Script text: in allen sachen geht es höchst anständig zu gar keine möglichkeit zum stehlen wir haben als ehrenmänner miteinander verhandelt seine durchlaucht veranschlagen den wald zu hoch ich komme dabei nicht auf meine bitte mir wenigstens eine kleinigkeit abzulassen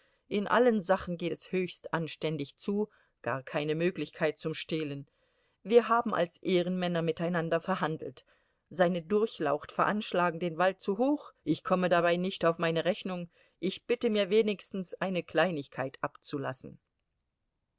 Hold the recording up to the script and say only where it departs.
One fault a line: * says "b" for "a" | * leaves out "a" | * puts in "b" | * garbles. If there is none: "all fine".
* puts in "rechnung ich"